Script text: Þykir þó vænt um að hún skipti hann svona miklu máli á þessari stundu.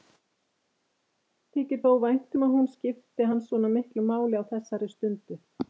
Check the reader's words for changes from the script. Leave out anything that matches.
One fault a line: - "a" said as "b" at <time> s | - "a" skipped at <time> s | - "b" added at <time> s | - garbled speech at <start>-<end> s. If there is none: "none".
none